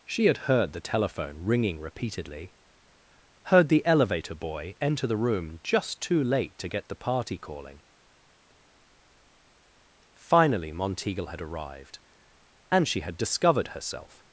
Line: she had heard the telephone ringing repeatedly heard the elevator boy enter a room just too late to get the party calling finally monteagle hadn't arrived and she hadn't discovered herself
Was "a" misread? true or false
true